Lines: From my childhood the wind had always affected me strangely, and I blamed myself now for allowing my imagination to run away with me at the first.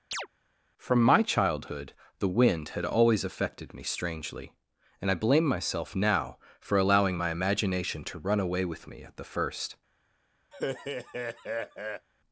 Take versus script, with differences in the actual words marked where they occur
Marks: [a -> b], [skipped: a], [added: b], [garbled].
From my childhood the wind had always affected me strangely, and I [blamed -> blame] myself now for allowing my imagination to run away with me at the first.